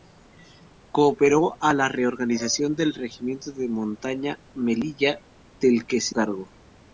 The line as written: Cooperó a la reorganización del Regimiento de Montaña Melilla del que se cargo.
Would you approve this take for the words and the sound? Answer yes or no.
yes